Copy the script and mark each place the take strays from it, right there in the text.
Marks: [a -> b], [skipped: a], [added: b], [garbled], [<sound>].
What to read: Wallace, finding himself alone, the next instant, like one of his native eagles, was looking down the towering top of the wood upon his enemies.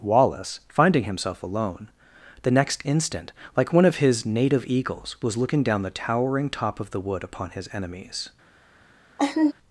Wallace, finding himself alone, the next instant, like one of his native eagles, was looking down the towering top of the wood upon his enemies. [laugh]